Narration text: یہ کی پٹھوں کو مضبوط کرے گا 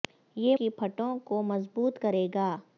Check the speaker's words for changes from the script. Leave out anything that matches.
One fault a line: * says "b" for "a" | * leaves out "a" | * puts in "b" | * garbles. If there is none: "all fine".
all fine